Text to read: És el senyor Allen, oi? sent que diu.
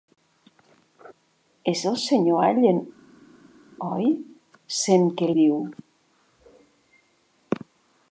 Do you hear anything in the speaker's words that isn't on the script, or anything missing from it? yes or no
no